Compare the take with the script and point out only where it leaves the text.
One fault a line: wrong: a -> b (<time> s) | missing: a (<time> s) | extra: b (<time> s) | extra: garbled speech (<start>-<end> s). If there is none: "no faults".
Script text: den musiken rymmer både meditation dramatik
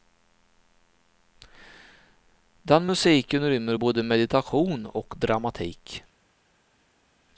extra: och (4.9 s)